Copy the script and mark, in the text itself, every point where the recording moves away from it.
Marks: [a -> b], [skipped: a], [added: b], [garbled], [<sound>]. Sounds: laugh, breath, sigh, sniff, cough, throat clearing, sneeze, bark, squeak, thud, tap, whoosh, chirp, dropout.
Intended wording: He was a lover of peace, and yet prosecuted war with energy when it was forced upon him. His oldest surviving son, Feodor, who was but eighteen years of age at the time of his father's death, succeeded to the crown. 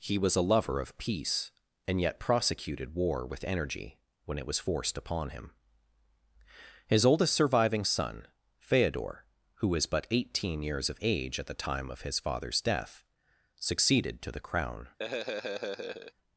He was a lover of peace, and yet prosecuted war with energy when it was forced upon him. His oldest surviving son, Feodor, who was but eighteen years of age at the time of his father's death, succeeded to the crown. [laugh]